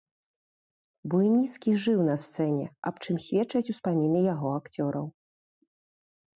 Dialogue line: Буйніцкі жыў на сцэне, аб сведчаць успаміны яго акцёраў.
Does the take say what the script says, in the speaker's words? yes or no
no